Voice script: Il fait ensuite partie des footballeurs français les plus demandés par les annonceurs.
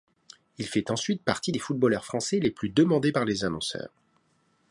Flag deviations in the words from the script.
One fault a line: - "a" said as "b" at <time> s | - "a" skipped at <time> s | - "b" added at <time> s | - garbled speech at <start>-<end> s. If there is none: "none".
none